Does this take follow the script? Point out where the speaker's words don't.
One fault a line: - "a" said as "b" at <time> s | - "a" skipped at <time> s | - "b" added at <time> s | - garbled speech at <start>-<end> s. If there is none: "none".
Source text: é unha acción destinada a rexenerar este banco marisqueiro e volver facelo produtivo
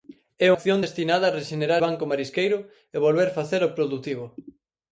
- "unha" skipped at 0.5 s
- "este" skipped at 1.8 s